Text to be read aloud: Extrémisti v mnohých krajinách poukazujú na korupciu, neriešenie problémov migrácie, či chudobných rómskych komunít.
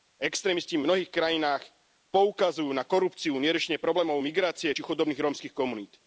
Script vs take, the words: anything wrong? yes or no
no